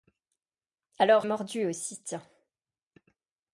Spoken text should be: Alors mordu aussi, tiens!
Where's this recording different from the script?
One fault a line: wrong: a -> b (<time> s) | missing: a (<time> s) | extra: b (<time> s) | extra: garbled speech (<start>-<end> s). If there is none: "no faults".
no faults